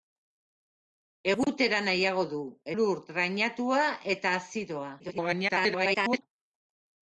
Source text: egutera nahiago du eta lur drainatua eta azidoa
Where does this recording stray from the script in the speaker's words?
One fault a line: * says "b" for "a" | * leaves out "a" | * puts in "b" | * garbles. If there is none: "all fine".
* leaves out "eta"
* garbles